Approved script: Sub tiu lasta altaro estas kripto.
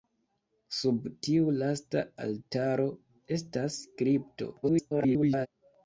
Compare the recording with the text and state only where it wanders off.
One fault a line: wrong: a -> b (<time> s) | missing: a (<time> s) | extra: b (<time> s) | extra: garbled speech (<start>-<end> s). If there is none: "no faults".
extra: garbled speech (4.6-5.5 s)